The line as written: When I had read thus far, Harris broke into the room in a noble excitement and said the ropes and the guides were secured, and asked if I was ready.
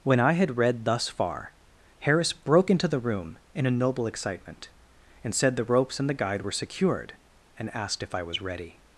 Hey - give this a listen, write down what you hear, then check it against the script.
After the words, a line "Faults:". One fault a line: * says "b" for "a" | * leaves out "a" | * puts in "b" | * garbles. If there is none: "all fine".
When I had read thus far, Harris broke into the room in a noble excitement and said the ropes and the guide were secured, and asked if I was ready.
Faults:
* says "guide" for "guides"